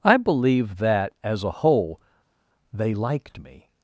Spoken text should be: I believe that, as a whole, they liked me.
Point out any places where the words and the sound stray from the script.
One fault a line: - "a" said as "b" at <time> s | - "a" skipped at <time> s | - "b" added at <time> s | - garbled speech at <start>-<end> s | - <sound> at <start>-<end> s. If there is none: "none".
none